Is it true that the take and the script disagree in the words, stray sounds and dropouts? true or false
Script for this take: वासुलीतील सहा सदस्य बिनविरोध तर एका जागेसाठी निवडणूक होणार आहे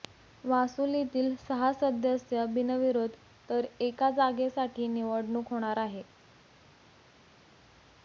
false